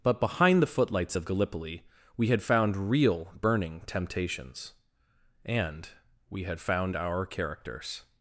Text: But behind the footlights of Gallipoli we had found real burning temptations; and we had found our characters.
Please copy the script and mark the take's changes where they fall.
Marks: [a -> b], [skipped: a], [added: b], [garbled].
But behind the footlights of Gallipoli we had found real burning temptations; and we had found our characters.